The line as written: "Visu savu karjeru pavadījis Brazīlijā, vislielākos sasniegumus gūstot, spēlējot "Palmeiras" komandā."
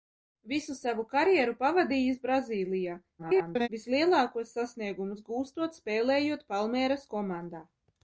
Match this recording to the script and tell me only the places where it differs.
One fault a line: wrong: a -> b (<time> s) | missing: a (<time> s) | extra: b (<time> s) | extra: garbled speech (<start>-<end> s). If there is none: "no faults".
extra: garbled speech (3.2-3.7 s)